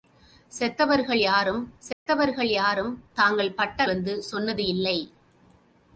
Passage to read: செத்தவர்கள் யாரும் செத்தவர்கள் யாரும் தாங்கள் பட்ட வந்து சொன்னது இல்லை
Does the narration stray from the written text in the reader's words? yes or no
no